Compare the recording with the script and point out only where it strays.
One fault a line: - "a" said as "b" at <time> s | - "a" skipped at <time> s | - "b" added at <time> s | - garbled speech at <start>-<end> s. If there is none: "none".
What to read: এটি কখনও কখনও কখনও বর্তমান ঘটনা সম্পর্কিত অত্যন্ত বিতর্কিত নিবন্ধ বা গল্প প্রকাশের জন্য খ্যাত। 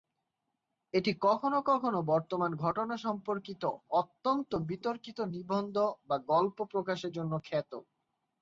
- "কখনও" skipped at 2.0 s